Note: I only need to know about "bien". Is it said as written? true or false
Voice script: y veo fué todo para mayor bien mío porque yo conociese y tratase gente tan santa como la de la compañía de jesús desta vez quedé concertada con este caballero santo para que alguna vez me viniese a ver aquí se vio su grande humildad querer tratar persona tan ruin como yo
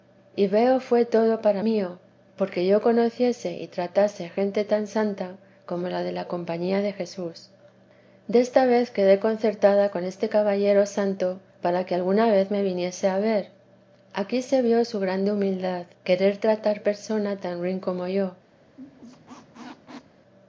false